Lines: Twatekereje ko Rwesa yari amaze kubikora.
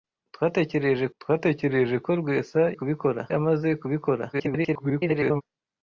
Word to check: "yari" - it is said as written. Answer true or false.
false